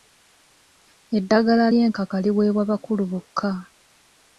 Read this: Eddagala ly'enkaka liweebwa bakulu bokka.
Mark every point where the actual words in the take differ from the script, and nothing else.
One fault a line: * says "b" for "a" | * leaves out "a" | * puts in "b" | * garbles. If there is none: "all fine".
all fine